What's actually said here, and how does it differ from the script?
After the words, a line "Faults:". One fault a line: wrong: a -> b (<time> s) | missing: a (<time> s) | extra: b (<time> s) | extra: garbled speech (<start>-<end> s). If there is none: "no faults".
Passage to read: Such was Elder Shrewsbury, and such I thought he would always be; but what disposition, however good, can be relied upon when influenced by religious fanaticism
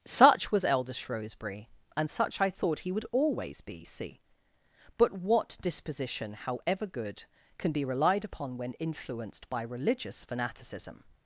Such was Elder Shrewsbury, and such I thought he would always be; see but what disposition, however good, can be relied upon when influenced by religious fanaticism
Faults:
extra: see (3.9 s)